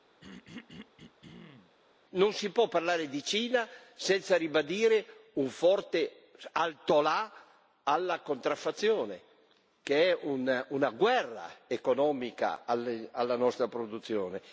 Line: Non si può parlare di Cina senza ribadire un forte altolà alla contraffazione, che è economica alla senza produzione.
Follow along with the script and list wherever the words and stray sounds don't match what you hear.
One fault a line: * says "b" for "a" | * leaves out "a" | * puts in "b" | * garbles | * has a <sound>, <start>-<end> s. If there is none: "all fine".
* has a throat clearing, 0.2-1.8 s
* puts in "una guerra"
* says "nostra" for "senza"